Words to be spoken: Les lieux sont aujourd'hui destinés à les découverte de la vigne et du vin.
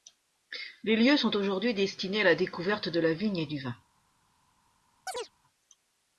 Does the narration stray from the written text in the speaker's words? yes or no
yes